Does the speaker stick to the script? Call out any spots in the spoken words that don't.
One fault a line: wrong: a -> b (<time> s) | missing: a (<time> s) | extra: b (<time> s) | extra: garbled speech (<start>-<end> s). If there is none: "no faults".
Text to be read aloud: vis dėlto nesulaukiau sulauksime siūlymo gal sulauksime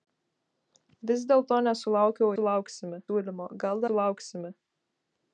no faults